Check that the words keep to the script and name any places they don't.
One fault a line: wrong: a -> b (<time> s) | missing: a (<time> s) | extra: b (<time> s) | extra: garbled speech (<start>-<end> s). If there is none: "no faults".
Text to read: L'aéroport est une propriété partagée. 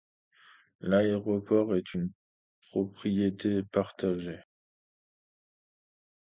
no faults